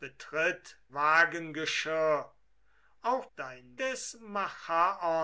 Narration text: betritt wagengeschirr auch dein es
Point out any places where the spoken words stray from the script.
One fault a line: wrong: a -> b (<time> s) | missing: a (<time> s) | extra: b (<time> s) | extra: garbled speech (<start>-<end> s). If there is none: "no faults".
no faults